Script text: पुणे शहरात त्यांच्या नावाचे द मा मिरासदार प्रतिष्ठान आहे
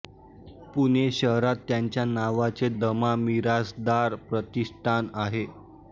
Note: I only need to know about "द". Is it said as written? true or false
true